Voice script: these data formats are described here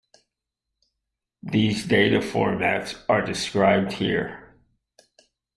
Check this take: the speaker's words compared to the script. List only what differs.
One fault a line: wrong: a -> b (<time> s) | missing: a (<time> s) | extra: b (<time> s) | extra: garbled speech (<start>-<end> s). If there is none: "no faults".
no faults